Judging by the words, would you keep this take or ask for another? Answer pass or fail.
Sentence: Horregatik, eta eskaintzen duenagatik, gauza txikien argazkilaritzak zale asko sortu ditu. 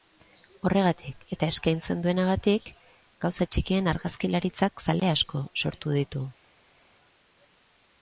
pass